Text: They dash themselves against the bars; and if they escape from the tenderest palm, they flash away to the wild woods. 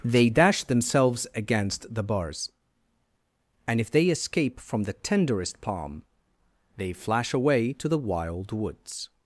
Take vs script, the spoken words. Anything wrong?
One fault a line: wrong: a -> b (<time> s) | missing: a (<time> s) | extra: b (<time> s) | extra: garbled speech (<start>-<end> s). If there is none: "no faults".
no faults